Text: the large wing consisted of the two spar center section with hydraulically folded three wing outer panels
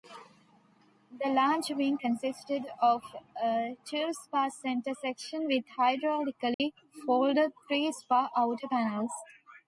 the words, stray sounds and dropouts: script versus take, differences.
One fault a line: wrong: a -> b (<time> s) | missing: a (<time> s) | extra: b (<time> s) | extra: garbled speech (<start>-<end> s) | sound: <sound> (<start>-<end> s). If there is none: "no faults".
wrong: the -> a (3.3 s)
sound: dropout (6.5-6.6 s)
wrong: wing -> spar (7.9 s)